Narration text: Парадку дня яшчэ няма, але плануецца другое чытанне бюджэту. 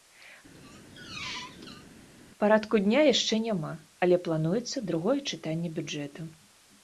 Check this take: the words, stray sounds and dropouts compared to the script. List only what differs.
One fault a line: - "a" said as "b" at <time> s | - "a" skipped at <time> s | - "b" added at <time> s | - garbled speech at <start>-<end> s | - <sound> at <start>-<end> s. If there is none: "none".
- squeak at 0.5-1.9 s